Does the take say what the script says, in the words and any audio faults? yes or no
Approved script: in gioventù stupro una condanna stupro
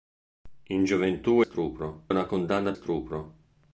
yes